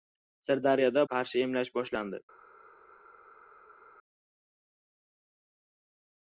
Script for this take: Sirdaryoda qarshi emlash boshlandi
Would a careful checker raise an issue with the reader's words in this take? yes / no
no